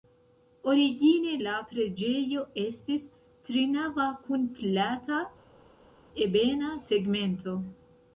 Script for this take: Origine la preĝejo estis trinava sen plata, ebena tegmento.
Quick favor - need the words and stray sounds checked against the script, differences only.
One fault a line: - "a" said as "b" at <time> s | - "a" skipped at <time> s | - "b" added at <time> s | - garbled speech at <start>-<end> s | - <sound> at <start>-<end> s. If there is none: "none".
- "sen" said as "kun" at 4.2 s